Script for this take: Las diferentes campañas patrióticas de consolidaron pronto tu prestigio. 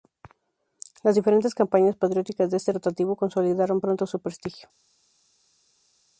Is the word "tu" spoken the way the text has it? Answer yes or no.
no